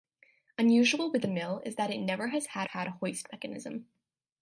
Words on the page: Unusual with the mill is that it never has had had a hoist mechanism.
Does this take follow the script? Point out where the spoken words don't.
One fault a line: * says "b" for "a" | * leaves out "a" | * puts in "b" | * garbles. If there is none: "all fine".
all fine